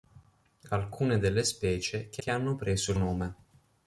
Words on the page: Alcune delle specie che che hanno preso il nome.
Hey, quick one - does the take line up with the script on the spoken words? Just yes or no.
yes